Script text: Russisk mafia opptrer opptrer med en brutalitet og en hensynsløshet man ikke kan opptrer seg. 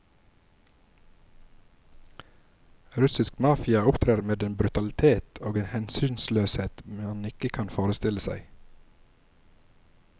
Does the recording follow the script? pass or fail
fail